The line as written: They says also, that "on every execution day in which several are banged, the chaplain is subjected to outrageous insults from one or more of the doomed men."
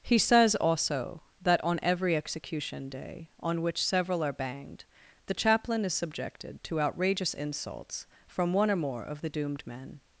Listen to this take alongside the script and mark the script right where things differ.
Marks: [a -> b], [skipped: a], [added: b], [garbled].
[They -> He] says also, that "on every execution day [in -> on] which several are banged, the chaplain is subjected to outrageous insults from one or more of the doomed men."